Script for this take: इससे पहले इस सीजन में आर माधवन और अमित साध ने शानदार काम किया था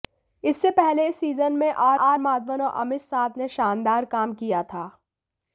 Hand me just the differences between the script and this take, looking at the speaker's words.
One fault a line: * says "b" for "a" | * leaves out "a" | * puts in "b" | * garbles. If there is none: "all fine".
* puts in "आर"